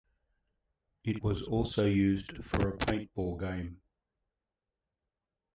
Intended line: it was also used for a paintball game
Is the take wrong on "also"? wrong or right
right